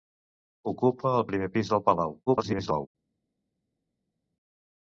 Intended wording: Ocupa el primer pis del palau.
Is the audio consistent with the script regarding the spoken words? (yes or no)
no